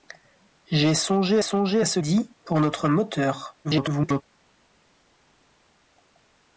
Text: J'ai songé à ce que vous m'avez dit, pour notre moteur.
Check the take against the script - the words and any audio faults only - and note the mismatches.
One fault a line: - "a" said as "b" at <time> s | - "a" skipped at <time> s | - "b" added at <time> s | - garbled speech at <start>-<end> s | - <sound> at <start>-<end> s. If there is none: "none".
- "songé" added at 1.4 s
- "que vous m'avez" skipped at 2.0 s
- garbled speech at 3.6-4.2 s